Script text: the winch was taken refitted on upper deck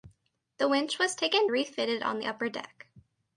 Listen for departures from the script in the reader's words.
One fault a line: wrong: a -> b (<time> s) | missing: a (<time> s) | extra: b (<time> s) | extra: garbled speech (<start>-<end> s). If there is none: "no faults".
no faults